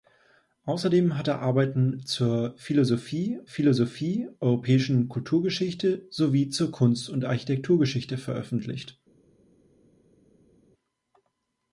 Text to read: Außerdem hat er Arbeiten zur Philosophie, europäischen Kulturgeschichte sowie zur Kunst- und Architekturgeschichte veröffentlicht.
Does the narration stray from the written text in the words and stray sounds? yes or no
yes